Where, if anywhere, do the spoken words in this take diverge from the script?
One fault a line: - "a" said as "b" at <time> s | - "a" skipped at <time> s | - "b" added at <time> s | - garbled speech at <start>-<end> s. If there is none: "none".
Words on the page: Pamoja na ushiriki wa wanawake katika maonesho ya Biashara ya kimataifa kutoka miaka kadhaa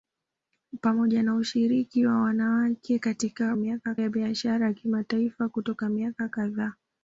- "maonesho" said as "miaka" at 3.6 s